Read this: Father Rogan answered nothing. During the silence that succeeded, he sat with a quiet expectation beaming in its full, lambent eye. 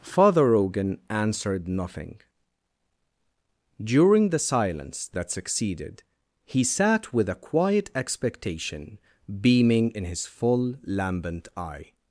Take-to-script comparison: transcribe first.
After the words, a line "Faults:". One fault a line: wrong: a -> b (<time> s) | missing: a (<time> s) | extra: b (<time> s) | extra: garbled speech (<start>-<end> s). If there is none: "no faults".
Father Rogan answered nothing. During the silence that succeeded, he sat with a quiet expectation beaming in his full, lambent eye.
Faults:
wrong: its -> his (10.1 s)